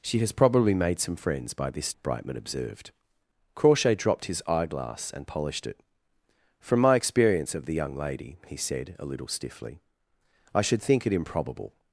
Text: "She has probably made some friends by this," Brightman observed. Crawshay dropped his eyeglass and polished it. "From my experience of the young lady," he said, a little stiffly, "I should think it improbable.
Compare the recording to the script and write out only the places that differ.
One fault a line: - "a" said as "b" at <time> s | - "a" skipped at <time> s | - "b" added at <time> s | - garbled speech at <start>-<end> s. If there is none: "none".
none